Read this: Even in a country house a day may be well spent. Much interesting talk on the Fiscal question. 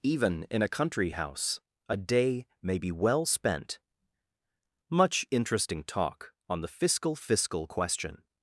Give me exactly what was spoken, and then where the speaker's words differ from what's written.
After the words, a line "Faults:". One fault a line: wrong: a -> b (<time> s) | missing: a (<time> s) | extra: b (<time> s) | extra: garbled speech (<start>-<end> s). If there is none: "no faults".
Even in a country house a day may be well spent. Much interesting talk on the Fiscal Fiscal question.
Faults:
extra: Fiscal (7.1 s)